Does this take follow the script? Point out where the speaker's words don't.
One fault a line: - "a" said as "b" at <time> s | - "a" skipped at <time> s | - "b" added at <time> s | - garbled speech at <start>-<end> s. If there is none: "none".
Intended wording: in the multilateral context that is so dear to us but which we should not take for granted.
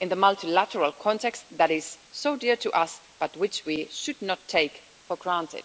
none